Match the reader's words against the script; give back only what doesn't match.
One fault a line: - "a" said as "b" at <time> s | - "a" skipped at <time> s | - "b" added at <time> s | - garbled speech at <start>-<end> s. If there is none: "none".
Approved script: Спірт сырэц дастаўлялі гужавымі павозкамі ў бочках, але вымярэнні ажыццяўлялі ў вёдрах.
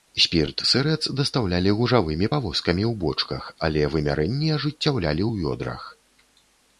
none